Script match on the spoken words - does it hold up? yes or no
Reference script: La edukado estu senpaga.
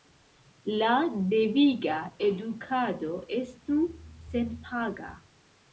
no